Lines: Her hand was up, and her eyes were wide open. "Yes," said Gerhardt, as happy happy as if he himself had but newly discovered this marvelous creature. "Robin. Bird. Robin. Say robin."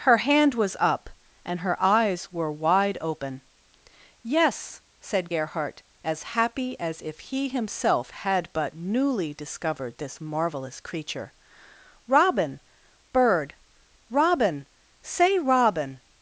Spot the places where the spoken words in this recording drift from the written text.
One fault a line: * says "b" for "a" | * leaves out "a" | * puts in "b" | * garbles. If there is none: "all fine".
* leaves out "happy"